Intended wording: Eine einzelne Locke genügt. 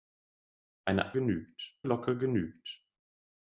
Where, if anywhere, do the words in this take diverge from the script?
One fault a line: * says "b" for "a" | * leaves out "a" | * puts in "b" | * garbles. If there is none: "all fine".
* says "genügt" for "einzelne"